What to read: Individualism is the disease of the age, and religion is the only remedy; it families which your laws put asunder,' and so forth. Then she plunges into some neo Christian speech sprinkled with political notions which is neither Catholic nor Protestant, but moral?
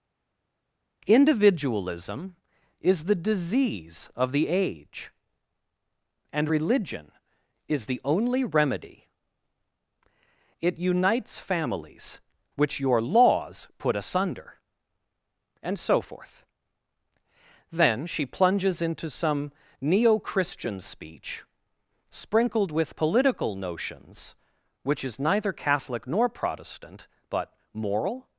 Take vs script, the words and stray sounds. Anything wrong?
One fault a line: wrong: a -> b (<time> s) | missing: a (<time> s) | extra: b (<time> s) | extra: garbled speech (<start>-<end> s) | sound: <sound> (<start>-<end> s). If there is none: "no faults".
extra: unites (10.8 s)